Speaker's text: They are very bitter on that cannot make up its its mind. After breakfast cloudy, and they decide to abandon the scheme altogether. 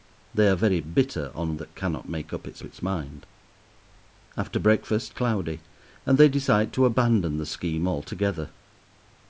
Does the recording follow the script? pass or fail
pass